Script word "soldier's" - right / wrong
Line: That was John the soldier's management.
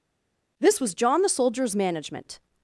right